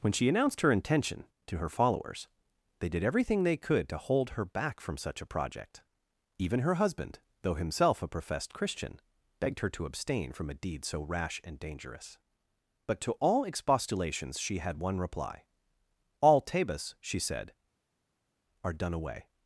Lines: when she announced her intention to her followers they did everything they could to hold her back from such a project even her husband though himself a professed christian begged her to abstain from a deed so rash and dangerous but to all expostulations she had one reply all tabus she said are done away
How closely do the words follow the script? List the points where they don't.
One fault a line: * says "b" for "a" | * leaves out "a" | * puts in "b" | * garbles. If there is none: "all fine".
all fine